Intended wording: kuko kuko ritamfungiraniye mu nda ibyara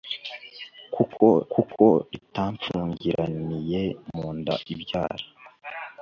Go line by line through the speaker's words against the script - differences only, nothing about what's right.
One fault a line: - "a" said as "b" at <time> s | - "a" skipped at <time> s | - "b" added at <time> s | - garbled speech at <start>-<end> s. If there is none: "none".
none